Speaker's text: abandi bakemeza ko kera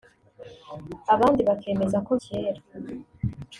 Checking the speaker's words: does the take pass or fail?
pass